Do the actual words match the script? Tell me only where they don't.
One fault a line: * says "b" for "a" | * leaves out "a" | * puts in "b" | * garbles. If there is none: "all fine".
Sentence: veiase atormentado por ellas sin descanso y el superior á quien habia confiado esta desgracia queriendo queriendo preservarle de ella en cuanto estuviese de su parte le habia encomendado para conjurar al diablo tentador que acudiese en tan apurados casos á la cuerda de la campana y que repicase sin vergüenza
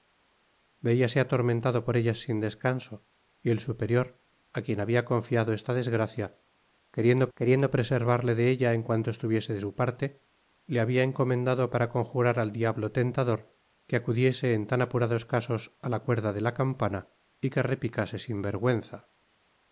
all fine